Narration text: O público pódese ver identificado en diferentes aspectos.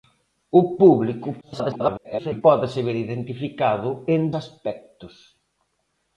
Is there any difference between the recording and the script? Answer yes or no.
yes